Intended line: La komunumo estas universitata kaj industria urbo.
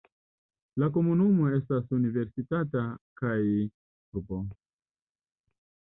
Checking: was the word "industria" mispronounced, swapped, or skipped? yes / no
yes